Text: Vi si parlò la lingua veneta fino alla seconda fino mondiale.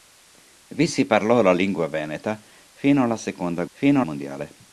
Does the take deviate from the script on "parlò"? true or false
false